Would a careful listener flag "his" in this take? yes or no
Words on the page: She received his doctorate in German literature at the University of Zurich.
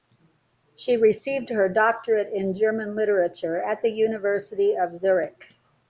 yes